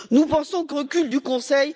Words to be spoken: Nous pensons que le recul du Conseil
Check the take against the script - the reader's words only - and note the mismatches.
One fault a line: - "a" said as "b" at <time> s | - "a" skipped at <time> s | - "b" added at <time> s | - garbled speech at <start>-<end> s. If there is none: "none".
- "le" skipped at 0.8 s